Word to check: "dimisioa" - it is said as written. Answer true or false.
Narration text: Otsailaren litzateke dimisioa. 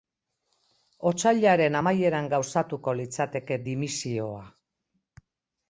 true